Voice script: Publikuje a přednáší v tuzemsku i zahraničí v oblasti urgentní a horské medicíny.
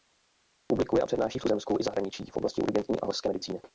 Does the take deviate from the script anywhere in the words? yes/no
no